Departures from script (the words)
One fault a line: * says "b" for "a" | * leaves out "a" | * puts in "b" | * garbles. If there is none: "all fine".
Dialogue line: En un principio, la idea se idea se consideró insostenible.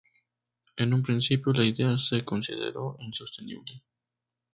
* leaves out "idea se"